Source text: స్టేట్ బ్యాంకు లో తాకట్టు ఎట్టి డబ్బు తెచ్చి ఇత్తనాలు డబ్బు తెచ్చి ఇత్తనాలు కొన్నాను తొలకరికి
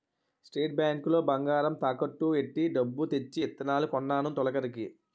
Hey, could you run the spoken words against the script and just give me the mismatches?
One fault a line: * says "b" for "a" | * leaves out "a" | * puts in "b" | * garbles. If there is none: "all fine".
* puts in "బంగారం"
* leaves out "డబ్బు తెచ్చి ఇత్తనాలు"